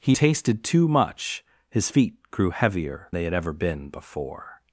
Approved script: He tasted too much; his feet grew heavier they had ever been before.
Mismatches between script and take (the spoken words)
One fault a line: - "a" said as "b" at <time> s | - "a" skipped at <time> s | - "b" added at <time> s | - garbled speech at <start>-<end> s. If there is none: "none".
none